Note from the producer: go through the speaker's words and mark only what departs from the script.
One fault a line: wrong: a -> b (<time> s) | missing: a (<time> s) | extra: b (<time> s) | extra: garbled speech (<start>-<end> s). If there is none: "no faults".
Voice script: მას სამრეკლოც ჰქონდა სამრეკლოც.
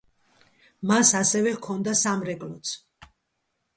wrong: სამრეკლოც -> ასევე (1.2 s)